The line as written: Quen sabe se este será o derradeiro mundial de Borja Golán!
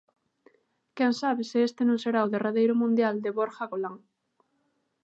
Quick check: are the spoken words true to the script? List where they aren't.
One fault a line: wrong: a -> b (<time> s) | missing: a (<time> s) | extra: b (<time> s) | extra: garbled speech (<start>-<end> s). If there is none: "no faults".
extra: non (1.9 s)